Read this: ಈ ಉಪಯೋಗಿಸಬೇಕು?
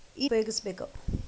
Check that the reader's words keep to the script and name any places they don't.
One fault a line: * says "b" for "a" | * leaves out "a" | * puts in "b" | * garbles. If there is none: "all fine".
all fine